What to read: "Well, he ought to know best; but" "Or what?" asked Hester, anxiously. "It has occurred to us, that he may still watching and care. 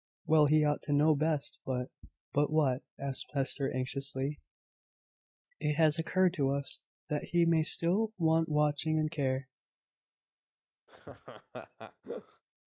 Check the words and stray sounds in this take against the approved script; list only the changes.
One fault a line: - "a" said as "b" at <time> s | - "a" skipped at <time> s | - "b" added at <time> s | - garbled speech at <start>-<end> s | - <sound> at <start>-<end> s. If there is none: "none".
- "Or" said as "But" at 2.3 s
- "want" added at 8.2 s
- laugh at 10.9-12.4 s